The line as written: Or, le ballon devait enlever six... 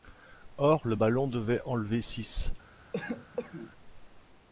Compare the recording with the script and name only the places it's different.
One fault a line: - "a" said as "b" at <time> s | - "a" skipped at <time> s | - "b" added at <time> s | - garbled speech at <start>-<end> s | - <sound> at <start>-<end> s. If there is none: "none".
- cough at 2.9-3.7 s